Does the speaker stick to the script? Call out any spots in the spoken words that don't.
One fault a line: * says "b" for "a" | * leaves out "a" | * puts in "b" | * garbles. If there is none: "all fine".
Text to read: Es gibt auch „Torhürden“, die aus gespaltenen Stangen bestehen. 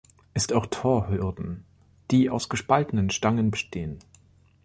* leaves out "gibt"